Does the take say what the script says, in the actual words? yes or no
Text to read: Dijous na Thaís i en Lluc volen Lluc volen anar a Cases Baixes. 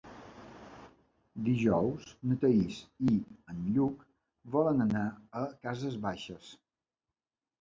no